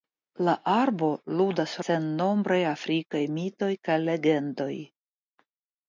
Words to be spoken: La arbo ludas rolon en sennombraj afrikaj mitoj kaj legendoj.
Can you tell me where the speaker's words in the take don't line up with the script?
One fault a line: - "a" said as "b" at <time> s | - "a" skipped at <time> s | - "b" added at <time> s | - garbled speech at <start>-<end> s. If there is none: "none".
- "rolon en" skipped at 1.8 s